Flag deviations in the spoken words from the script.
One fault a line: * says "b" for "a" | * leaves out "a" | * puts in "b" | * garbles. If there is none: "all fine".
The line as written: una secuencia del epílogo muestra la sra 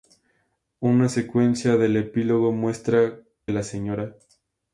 all fine